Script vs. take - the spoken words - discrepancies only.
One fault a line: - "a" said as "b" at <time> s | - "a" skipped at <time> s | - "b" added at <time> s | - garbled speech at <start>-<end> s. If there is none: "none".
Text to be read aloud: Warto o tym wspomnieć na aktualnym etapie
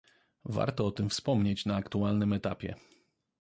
none